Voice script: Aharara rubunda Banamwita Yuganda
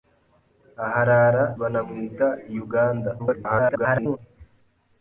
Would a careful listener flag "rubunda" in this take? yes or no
yes